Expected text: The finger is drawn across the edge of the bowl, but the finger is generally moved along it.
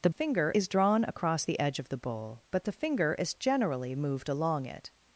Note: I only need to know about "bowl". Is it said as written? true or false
true